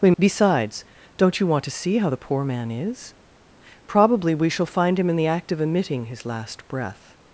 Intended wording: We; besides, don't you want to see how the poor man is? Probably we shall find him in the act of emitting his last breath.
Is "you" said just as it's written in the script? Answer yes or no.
yes